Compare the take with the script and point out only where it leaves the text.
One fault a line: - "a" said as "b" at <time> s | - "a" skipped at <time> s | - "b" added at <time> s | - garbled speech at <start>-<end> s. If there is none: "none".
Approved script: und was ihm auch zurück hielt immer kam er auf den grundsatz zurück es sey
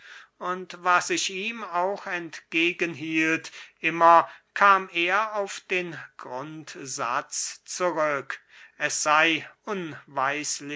- "ich" added at 1.1 s
- "zurück" said as "entgegen" at 2.1 s